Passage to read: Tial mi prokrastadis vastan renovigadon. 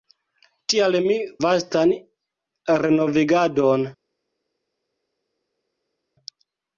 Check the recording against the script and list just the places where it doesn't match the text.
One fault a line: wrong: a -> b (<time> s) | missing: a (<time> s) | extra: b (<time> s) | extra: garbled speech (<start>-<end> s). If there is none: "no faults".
missing: prokrastadis (1.2 s)